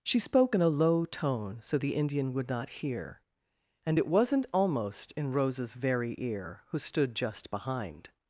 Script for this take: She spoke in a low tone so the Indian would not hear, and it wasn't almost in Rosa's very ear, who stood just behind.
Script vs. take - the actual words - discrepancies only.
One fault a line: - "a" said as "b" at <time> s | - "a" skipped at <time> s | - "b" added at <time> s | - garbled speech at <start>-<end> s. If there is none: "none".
none